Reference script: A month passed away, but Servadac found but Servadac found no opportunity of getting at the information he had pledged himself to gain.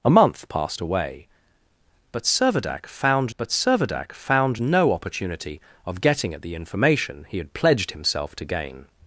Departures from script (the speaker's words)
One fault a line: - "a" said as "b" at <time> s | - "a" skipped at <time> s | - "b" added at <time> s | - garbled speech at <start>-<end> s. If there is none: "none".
none